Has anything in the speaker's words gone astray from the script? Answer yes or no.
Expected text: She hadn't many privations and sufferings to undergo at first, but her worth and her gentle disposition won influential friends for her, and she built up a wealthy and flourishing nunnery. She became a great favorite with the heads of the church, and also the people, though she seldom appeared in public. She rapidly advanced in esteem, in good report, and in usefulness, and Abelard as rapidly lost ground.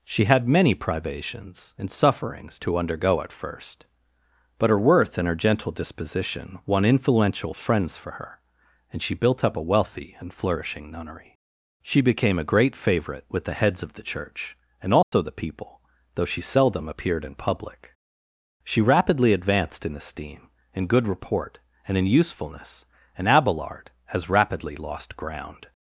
yes